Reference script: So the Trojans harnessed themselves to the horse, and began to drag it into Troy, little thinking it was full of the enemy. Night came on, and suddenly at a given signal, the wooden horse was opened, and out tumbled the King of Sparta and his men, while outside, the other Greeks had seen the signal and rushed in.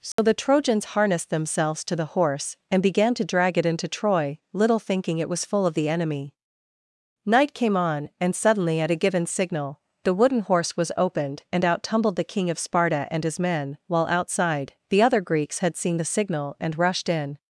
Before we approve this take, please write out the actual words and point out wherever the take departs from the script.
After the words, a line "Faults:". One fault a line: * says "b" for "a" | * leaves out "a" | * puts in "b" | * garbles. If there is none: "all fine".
So the Trojans harnessed themselves to the horse, and began to drag it into Troy, little thinking it was full of the enemy. Night came on, and suddenly at a given signal, the wooden horse was opened, and out tumbled the King of Sparta and his men, while outside, the other Greeks had seen the signal and rushed in.
Faults:
all fine